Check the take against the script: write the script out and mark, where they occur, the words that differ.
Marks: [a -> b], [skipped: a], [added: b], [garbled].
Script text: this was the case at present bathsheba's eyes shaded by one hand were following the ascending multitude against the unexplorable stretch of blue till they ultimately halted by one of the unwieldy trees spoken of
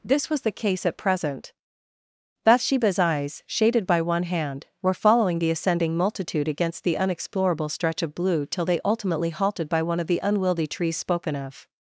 this was the case at present bathsheba's eyes shaded by one hand were following the ascending multitude against the unexplorable stretch of blue till they ultimately halted by one of the unwieldy trees spoken of